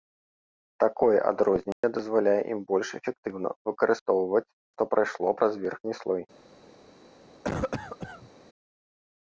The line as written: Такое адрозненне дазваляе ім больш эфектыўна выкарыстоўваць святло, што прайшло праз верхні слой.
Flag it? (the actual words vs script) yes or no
yes